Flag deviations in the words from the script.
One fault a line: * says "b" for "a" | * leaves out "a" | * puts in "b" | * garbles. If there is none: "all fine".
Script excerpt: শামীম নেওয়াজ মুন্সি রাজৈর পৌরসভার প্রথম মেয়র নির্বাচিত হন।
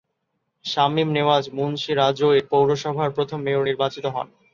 all fine